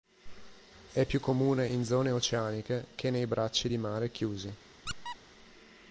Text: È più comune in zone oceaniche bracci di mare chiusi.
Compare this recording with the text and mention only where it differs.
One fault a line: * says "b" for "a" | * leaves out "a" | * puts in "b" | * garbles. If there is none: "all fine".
* puts in "che nei"